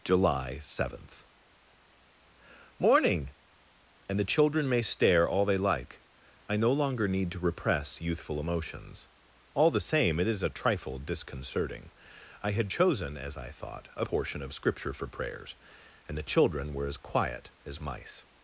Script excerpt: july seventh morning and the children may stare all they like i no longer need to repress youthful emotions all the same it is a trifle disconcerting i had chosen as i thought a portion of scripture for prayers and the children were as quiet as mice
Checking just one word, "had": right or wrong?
right